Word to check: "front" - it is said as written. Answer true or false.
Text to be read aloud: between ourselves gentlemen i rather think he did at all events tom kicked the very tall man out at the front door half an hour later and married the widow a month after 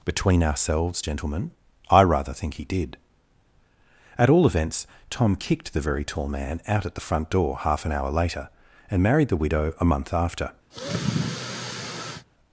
true